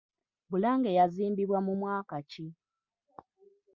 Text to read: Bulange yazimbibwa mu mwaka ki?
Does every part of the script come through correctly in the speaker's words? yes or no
yes